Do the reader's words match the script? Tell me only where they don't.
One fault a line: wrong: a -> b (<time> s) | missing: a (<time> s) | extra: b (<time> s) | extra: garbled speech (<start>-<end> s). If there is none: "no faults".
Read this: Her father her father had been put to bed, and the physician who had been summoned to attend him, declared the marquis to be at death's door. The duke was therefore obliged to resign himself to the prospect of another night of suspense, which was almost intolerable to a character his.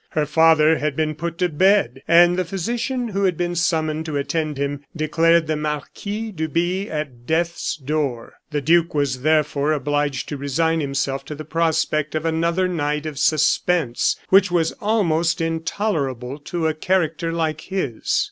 missing: her father (0.8 s)
extra: like (17.3 s)